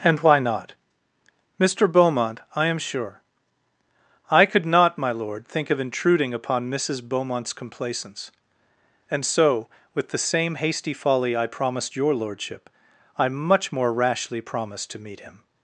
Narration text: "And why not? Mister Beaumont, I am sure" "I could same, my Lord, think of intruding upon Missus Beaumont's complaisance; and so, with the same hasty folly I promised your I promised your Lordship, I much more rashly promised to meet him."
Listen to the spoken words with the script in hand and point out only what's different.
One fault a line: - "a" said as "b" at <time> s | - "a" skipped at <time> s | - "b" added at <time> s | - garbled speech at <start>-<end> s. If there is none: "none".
- "same" said as "not" at 4.7 s
- "I promised your" skipped at 12.1 s